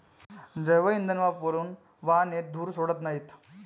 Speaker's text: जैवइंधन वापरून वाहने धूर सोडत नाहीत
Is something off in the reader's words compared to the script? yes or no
no